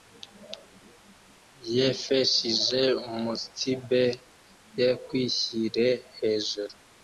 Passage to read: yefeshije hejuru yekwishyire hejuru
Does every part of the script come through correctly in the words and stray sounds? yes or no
no